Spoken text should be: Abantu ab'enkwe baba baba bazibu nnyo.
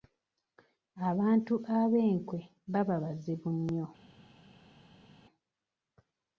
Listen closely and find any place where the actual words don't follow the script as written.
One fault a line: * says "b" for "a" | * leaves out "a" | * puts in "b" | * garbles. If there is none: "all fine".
* leaves out "baba"